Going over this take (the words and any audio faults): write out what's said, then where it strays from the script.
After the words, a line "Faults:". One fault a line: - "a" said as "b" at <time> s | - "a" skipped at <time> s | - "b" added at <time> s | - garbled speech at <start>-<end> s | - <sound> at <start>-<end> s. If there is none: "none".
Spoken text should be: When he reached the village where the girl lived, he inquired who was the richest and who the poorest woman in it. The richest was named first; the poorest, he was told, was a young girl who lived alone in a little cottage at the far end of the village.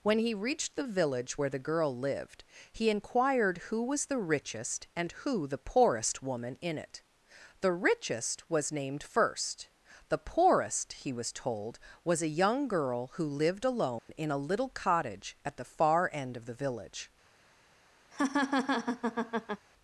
When he reached the village where the girl lived, he inquired who was the richest and who the poorest woman in it. The richest was named first; the poorest, he was told, was a young girl who lived alone in a little cottage at the far end of the village.
Faults:
- dropout at 14.0-14.1 s
- laugh at 18.1-19.7 s